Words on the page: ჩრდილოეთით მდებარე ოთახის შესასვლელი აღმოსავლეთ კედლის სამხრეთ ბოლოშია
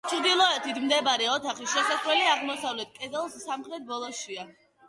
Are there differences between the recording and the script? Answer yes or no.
no